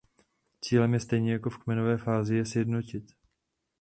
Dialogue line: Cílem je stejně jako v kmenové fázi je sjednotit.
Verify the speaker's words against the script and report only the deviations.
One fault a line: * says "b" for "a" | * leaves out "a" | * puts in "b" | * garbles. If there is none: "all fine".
all fine